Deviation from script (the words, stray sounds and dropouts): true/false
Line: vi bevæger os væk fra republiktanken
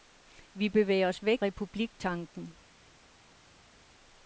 true